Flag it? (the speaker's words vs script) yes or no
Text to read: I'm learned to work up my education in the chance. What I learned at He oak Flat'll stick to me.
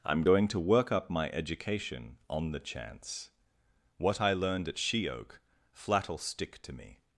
yes